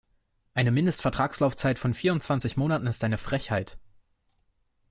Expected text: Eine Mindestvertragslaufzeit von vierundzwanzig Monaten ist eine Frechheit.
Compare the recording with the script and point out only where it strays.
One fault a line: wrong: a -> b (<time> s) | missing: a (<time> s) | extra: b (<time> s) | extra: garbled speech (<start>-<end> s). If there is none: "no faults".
no faults